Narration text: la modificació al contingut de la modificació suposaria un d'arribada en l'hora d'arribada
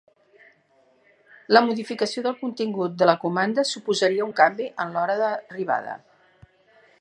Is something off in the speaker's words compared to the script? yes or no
yes